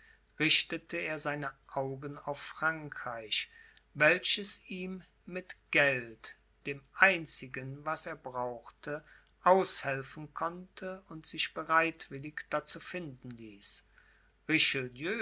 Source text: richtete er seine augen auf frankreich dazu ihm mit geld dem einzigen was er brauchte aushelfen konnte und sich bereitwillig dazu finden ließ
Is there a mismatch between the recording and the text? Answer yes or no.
yes